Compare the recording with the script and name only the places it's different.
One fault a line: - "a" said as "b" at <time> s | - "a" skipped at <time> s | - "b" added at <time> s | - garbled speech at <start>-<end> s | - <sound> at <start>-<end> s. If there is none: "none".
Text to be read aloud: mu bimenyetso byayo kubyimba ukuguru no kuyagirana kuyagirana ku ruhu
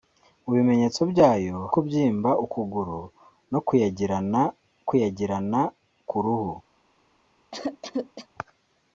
- cough at 7.5-8.3 s